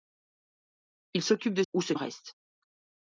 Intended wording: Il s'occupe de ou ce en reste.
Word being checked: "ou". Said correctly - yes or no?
yes